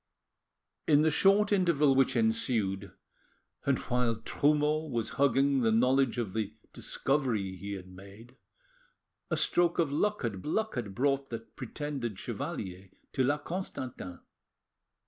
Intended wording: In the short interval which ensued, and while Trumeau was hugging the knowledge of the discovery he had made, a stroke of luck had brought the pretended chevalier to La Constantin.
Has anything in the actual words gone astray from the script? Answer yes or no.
yes